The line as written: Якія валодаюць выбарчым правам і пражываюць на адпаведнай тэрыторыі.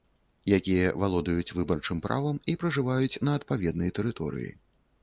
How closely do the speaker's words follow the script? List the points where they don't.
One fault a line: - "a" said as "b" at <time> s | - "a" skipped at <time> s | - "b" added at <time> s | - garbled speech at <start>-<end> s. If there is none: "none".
none